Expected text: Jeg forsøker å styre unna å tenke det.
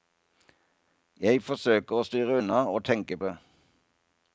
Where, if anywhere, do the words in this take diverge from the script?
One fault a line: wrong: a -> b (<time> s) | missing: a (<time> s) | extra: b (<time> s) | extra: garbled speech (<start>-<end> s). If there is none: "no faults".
no faults